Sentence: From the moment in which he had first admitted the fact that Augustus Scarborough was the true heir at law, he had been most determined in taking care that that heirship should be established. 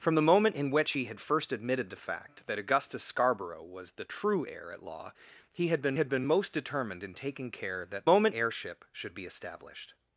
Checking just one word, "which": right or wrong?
right